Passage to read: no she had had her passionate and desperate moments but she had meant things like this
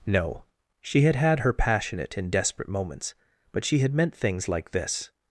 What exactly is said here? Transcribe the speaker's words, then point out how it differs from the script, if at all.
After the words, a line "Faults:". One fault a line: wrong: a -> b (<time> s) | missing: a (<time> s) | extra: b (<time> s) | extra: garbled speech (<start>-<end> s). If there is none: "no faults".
no she had had her passionate and desperate moments but she had meant things like this
Faults:
no faults